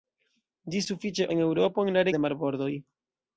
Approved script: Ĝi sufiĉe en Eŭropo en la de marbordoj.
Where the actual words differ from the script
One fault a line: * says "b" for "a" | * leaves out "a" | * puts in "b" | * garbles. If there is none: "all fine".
all fine